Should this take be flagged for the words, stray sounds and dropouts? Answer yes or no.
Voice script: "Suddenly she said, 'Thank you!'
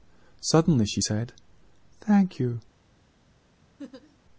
yes